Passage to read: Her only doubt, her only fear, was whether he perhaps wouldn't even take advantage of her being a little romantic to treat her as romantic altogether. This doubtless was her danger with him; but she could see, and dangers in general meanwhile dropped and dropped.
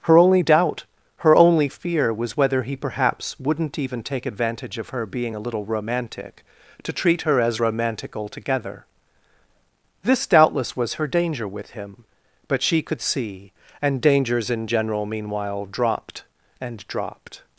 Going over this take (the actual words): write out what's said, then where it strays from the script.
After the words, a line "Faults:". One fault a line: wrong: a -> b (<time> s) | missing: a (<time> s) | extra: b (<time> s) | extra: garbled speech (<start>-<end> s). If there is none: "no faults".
Her only doubt, her only fear, was whether he perhaps wouldn't even take advantage of her being a little romantic to treat her as romantic altogether. This doubtless was her danger with him; but she could see, and dangers in general meanwhile dropped and dropped.
Faults:
no faults